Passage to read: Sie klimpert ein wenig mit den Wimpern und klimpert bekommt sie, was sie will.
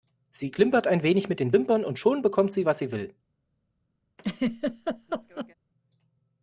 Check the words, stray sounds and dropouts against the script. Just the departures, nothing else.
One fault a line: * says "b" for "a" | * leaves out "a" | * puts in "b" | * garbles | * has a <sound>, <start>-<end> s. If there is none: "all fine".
* says "schon" for "klimpert"
* has a laugh, 4.2-5.5 s